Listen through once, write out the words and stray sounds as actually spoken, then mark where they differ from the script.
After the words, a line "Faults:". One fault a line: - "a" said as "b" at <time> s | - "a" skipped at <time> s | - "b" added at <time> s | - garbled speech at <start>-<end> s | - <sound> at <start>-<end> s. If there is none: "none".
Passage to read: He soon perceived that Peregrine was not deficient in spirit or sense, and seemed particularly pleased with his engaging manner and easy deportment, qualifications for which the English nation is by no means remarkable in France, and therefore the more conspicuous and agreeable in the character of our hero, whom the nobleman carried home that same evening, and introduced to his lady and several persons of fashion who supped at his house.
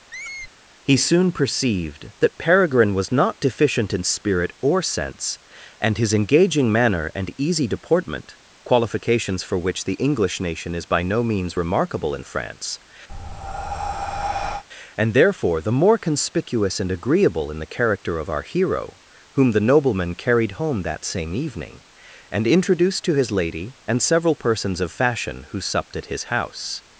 He soon perceived that Peregrine was not deficient in spirit or sense, and his engaging manner and easy deportment, qualifications for which the English nation is by no means remarkable in France, and therefore the more conspicuous and agreeable in the character of our hero, whom the nobleman carried home that same evening, and introduced to his lady and several persons of fashion who supped at his house.
Faults:
- squeak at 0.1-0.5 s
- "seemed particularly pleased with" skipped at 6.0 s
- breath at 13.1-14.6 s